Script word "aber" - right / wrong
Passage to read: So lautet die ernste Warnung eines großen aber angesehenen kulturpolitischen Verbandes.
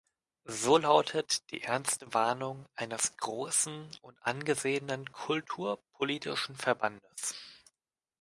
wrong